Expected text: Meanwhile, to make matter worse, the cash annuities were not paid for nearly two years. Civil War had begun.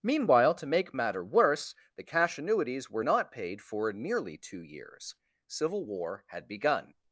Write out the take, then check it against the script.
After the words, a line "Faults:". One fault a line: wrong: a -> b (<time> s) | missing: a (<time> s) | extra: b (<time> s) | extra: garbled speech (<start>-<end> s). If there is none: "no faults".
Meanwhile, to make matter worse, the cash annuities were not paid for nearly two years. Civil War had begun.
Faults:
no faults